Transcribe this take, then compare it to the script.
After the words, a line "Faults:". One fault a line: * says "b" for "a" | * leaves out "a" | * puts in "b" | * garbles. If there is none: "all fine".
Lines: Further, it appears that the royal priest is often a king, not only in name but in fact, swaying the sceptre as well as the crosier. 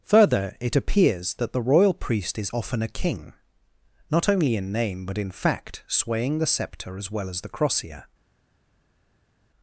Further, it appears that the royal priest is often a king, not only in name but in fact, swaying the sceptre as well as the crosier.
Faults:
all fine